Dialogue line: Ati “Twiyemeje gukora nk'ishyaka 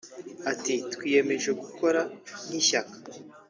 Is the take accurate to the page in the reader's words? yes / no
yes